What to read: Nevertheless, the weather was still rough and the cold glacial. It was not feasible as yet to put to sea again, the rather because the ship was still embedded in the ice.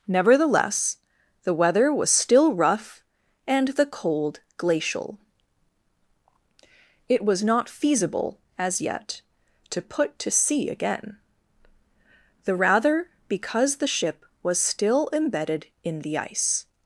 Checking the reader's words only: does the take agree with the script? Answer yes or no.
yes